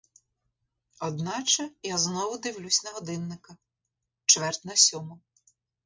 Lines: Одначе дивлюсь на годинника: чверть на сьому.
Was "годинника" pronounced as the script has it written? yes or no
yes